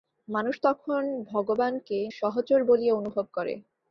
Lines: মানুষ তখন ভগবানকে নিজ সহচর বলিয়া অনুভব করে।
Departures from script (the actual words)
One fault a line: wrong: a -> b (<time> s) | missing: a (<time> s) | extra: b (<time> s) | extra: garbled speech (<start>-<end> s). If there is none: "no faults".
missing: নিজ (2.0 s)